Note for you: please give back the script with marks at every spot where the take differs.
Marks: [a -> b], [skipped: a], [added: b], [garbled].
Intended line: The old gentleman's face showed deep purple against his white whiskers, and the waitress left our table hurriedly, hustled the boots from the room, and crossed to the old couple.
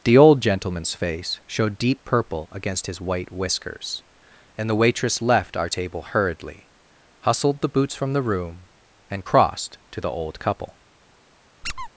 The old gentleman's face showed deep purple against his white whiskers, and the waitress left our table hurriedly, hustled the boots from the room, and crossed to the old couple.